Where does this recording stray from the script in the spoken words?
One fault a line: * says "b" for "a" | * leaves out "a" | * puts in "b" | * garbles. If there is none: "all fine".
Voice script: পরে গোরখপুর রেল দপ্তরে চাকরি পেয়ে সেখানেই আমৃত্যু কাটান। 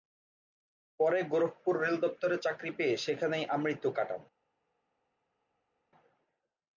all fine